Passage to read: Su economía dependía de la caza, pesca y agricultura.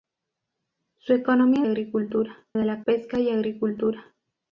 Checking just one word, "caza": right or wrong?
wrong